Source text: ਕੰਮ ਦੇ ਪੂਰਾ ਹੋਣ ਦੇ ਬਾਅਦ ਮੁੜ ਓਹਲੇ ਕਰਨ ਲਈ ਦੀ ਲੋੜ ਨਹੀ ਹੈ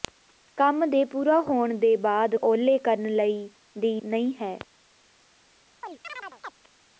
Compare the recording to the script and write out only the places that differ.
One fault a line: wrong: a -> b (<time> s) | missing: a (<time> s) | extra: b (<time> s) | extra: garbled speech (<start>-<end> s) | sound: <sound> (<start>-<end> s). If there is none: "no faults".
missing: ਮੁੜ (2.4 s)
missing: ਲੋੜ (4.0 s)
sound: chirp (5.8-6.5 s)